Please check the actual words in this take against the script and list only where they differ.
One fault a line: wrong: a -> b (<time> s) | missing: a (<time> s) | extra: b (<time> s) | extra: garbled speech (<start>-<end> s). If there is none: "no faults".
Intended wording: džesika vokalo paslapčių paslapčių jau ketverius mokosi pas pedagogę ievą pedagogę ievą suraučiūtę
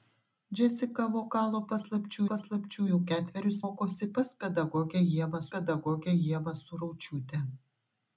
no faults